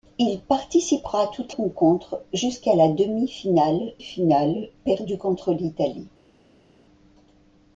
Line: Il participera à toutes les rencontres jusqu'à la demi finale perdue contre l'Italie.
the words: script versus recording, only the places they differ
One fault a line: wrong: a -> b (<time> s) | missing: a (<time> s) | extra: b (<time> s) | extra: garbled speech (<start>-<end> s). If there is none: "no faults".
missing: les (1.6 s)
extra: finale (4.0 s)